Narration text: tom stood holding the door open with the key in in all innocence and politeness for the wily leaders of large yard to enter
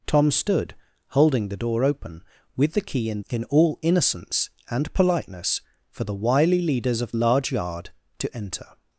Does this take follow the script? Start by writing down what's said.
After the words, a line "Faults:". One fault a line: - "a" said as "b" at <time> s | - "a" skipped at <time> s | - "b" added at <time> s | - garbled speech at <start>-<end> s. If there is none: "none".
tom stood holding the door open with the key in in all innocence and politeness for the wily leaders of large yard to enter
Faults:
none